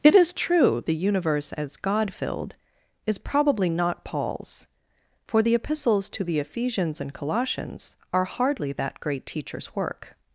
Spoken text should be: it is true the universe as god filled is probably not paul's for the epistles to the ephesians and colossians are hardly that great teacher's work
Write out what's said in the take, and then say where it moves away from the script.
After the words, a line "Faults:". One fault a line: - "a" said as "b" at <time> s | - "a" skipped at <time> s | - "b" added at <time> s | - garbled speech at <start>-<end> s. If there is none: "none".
it is true the universe as god filled is probably not paul's for the epistles to the ephesians and colossians are hardly that great teacher's work
Faults:
none